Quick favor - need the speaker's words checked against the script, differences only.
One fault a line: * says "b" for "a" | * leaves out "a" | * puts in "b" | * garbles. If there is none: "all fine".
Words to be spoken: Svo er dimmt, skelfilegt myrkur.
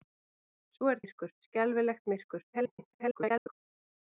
* says "myrkur" for "dimmt"
* garbles